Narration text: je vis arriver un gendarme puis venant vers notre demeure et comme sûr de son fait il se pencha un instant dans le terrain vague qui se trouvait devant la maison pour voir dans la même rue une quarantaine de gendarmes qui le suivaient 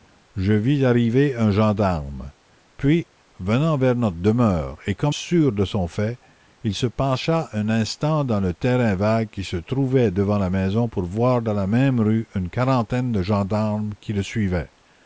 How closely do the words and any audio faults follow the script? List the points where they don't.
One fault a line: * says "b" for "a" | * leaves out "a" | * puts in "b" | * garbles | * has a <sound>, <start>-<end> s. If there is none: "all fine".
all fine